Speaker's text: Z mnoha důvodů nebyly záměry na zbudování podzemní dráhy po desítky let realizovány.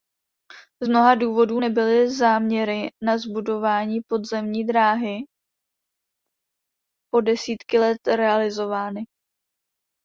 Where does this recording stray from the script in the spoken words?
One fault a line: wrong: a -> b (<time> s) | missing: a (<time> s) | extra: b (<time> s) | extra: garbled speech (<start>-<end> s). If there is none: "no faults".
no faults